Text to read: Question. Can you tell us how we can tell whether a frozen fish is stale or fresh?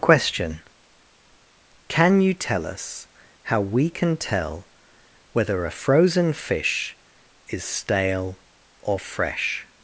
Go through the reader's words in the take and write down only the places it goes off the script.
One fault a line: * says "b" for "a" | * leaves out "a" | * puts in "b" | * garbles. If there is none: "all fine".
all fine